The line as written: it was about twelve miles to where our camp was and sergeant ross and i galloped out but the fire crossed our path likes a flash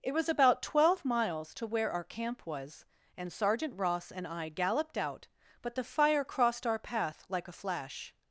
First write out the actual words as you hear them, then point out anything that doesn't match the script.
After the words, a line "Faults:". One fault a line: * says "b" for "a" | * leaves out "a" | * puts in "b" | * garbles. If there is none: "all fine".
it was about twelve miles to where our camp was and sergeant ross and i galloped out but the fire crossed our path like a flash
Faults:
* says "like" for "likes"